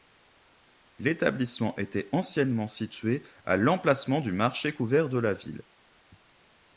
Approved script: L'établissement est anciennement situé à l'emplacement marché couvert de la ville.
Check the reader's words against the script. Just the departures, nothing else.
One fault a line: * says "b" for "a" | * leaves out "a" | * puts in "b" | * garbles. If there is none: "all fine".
* says "était" for "est"
* puts in "du"